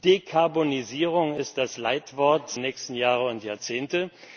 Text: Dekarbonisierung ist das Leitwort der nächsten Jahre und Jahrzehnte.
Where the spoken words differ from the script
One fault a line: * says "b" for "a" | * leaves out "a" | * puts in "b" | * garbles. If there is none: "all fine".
* leaves out "der"